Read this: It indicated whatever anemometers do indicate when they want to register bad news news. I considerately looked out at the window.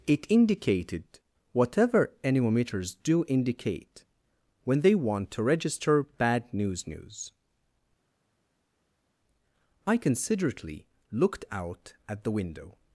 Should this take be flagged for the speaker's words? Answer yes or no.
no